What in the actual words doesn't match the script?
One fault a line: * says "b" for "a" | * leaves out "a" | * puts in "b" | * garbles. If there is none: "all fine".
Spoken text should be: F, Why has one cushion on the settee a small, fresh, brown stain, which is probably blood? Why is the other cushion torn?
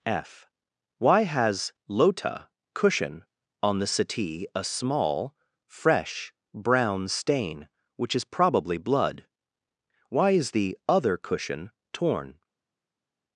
* says "lota" for "one"